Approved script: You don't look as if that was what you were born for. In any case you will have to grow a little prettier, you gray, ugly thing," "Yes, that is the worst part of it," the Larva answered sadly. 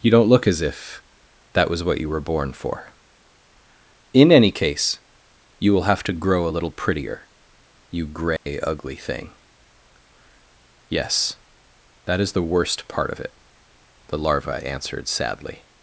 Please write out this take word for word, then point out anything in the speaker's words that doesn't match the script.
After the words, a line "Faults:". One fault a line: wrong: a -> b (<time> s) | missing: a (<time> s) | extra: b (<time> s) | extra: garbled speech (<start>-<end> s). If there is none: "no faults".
You don't look as if that was what you were born for. In any case you will have to grow a little prettier, you gray, ugly thing," "Yes, that is the worst part of it," the Larva answered sadly.
Faults:
no faults